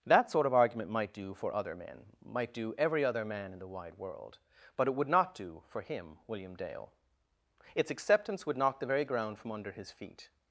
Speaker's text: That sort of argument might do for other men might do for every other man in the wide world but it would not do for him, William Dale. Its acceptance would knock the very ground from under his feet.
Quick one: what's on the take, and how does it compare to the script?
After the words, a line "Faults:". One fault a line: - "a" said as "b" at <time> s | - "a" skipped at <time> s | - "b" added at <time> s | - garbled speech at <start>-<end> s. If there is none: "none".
That sort of argument might do for other men might do every other man in the wide world but it would not do for him, William Dale. Its acceptance would knock the very ground from under his feet.
Faults:
- "for" skipped at 2.7 s